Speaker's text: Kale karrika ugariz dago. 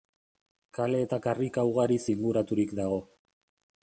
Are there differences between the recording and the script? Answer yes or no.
yes